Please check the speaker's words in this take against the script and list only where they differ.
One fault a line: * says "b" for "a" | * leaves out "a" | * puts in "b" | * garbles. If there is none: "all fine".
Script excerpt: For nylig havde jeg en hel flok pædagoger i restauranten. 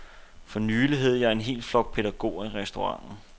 all fine